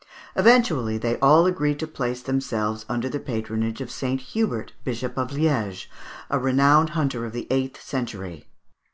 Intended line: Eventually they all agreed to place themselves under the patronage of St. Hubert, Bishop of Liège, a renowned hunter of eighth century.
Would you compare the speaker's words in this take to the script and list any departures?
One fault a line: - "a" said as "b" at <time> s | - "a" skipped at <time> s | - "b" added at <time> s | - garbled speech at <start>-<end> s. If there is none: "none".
- "the" added at 7.3 s